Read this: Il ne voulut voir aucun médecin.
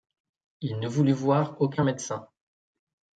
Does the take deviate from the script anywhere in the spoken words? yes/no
no